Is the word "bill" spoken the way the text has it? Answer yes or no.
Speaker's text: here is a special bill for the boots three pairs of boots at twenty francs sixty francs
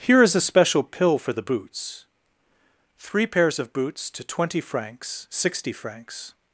no